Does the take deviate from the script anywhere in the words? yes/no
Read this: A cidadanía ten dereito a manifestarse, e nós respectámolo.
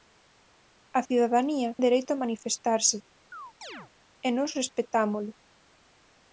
yes